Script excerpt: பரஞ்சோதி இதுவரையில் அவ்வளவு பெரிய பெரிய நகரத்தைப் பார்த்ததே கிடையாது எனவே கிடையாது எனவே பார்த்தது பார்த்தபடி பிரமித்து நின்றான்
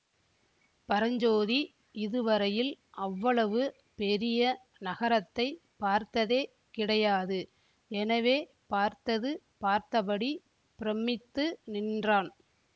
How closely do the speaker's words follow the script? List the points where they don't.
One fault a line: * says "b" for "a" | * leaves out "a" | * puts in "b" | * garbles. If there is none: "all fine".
* leaves out "பெரிய"
* leaves out "கிடையாது எனவே"